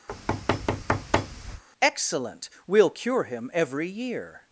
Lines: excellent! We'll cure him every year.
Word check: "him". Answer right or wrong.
right